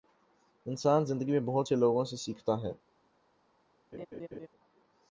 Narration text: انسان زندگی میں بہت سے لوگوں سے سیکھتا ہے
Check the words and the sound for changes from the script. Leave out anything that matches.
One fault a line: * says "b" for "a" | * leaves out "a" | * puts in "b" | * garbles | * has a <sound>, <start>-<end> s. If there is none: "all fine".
* has a laugh, 3.9-4.5 s